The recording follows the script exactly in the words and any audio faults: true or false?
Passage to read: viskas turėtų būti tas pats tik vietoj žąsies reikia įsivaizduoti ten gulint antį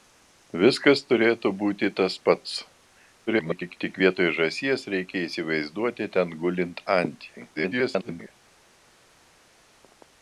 false